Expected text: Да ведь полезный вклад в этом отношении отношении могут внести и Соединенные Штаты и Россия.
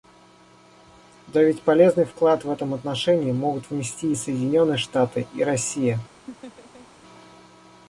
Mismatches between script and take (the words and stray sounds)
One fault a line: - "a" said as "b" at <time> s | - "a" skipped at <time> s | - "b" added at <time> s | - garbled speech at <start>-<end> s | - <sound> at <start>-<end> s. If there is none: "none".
- "отношении" skipped at 3.3 s
- laugh at 6.3-6.9 s